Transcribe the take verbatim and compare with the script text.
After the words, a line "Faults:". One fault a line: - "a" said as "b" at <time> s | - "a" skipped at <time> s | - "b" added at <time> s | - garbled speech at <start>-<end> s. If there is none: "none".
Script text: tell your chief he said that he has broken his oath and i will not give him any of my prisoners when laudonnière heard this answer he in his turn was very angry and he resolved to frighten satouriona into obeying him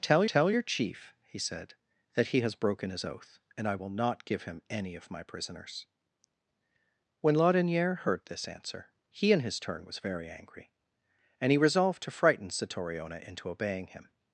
tell tell your chief he said that he has broken his oath and i will not give him any of my prisoners when laudonnière heard this answer he in his turn was very angry and he resolved to frighten satouriona into obeying him
Faults:
- "tell" added at 0.3 s